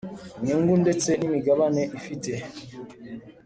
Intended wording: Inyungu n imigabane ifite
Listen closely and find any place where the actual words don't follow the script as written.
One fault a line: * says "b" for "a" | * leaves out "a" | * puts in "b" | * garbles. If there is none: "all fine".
* puts in "ndetse"